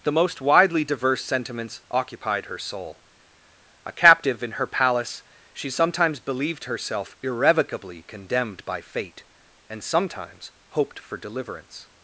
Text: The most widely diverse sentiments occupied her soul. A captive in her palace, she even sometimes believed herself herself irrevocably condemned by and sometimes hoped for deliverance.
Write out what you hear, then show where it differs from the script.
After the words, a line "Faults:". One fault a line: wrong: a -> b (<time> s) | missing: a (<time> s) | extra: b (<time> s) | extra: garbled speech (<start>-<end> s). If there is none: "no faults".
The most widely diverse sentiments occupied her soul. A captive in her palace, she sometimes believed herself irrevocably condemned by fate, and sometimes hoped for deliverance.
Faults:
missing: even (5.7 s)
missing: herself (7.2 s)
extra: fate (8.8 s)